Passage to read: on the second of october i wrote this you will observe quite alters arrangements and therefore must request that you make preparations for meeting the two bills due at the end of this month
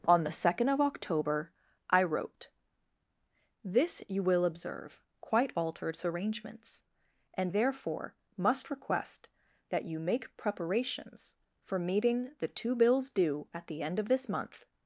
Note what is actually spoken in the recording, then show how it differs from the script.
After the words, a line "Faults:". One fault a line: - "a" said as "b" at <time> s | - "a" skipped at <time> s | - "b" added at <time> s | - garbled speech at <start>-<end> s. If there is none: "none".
on the second of october i wrote this you will observe quite alters arrangements and therefore must request that you make preparations for meeting the two bills due at the end of this month
Faults:
none